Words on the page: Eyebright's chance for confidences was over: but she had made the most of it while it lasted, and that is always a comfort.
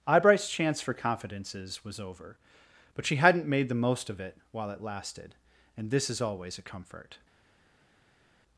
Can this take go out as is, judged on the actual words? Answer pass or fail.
fail